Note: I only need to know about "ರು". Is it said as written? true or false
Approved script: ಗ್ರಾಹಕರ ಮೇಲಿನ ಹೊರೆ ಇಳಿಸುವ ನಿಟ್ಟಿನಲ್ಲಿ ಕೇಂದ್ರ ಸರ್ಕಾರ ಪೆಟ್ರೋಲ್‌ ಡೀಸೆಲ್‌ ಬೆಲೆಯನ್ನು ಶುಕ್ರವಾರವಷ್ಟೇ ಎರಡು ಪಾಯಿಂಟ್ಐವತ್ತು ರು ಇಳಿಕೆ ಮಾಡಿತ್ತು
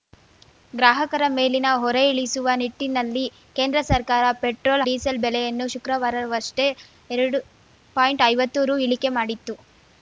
true